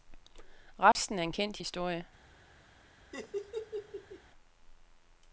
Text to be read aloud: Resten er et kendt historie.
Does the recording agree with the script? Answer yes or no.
no